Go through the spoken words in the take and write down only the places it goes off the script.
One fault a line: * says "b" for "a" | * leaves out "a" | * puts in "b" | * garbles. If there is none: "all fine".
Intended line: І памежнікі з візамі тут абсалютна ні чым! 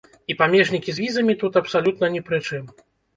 * puts in "пры"